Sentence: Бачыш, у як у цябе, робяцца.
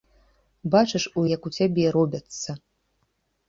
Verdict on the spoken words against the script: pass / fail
pass